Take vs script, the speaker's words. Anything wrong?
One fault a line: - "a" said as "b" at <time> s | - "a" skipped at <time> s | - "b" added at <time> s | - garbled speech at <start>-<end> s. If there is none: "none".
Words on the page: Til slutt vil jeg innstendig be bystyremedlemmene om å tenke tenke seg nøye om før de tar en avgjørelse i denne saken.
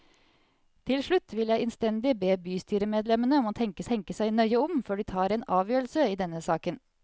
none